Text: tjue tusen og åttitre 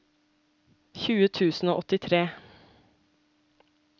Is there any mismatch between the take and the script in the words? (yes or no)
no